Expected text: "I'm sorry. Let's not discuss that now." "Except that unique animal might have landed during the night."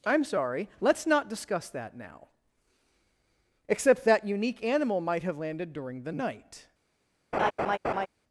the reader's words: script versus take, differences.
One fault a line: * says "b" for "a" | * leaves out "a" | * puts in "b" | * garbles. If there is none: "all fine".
all fine